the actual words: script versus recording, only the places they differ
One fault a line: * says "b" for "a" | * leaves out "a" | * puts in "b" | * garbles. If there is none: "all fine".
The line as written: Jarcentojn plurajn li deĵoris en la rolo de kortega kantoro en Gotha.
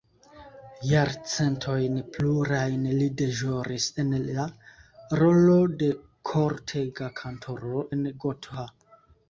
all fine